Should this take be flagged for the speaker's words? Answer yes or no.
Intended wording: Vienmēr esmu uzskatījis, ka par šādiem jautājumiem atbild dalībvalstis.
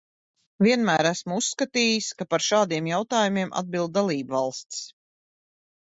no